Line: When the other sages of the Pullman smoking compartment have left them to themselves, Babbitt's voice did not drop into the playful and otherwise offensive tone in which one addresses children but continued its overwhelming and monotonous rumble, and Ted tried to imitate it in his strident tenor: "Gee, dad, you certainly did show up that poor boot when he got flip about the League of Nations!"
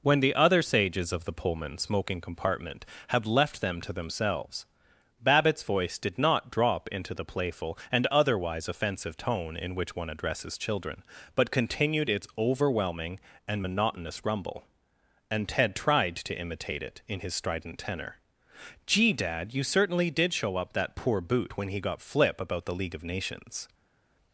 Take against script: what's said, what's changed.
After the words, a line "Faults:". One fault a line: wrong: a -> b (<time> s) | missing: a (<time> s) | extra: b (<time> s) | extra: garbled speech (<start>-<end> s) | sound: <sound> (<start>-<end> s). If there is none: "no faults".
When the other sages of the Pullman smoking compartment have left them to themselves, Babbitt's voice did not drop into the playful and otherwise offensive tone in which one addresses children but continued its overwhelming and monotonous rumble, and Ted tried to imitate it in his strident tenor: "Gee, dad, you certainly did show up that poor boot when he got flip about the League of Nations!"
Faults:
no faults